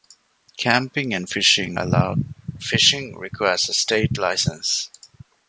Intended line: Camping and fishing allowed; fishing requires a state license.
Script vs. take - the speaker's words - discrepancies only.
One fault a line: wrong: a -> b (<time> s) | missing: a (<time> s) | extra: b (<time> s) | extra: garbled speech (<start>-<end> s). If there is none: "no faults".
no faults